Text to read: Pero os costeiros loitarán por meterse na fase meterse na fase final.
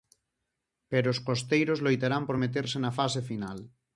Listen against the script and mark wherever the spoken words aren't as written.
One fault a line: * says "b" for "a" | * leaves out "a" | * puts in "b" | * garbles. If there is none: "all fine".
* leaves out "meterse na fase"